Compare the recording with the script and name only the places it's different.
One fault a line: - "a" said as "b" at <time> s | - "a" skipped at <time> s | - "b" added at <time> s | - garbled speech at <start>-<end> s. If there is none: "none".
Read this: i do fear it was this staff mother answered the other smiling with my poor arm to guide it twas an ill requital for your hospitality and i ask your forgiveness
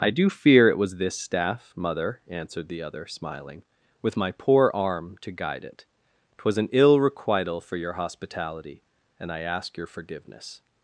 none